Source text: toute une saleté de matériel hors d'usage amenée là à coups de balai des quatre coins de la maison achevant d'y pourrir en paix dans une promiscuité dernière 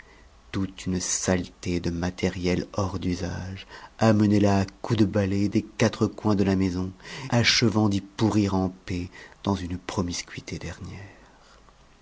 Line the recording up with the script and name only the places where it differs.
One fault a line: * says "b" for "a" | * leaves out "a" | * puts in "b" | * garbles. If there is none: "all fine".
all fine